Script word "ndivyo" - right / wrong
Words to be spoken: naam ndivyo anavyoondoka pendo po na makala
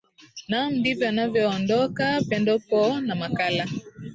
right